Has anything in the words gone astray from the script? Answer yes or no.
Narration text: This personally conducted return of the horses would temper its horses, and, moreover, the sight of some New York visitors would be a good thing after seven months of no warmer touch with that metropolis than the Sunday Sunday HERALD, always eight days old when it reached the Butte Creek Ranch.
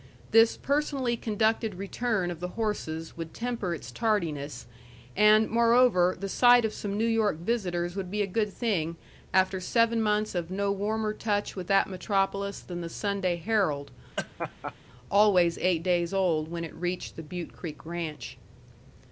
yes